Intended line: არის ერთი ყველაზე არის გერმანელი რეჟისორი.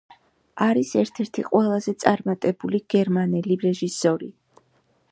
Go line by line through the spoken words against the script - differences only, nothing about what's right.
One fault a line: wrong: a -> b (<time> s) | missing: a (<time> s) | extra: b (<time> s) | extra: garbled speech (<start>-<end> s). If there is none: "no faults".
extra: ერთ (1.0 s)
wrong: არის -> წარმატებული (2.0 s)